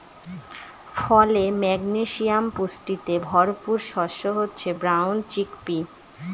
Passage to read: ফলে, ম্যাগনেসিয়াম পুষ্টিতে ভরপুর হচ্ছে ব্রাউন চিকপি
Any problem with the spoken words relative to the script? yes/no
yes